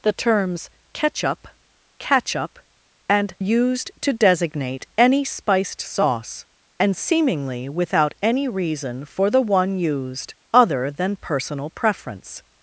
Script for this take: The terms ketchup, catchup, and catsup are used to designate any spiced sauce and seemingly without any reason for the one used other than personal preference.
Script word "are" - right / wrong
wrong